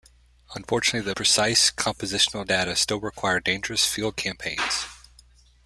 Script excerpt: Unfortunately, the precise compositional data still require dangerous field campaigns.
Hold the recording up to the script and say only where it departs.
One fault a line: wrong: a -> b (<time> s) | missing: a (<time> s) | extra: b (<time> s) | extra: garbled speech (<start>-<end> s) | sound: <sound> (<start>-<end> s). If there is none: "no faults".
no faults